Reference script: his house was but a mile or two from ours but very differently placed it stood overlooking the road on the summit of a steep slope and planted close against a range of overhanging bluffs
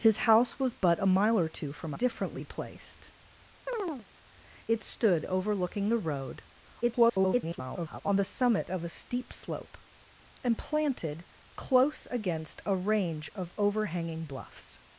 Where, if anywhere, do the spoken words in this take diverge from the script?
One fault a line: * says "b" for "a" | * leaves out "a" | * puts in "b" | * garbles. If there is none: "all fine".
* leaves out "ours but very"
* garbles